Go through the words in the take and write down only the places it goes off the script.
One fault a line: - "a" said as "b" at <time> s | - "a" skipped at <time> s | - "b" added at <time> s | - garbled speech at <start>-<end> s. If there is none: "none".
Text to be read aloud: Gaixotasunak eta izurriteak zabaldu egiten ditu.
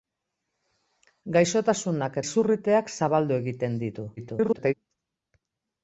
- "eta" skipped at 2.2 s
- garbled speech at 4.2-4.7 s